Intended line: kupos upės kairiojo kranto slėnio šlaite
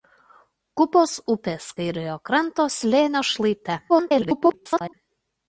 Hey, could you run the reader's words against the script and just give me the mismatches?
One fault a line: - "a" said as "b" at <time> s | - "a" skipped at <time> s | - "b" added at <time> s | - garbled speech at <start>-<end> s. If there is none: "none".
- garbled speech at 3.9-4.9 s